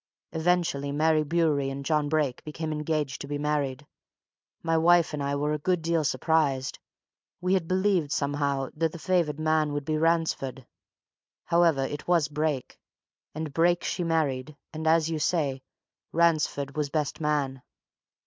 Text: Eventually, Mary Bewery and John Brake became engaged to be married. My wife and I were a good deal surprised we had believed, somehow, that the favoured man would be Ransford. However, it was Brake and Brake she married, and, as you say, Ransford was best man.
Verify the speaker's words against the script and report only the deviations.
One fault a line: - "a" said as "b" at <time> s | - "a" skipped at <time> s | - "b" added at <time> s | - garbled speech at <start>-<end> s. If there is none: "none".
none